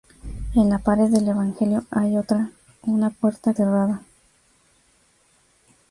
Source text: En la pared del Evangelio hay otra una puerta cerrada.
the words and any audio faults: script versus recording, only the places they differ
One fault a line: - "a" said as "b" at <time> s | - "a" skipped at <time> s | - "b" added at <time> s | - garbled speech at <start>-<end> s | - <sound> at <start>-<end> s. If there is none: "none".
none